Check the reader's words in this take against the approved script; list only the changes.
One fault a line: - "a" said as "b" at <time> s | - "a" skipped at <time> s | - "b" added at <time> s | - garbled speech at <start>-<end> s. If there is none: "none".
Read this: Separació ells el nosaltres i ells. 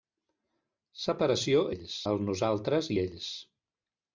none